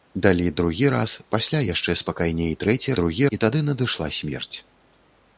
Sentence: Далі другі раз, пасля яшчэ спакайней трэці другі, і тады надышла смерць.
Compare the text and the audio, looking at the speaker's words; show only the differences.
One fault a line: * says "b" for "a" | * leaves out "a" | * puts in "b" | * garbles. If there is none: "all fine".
all fine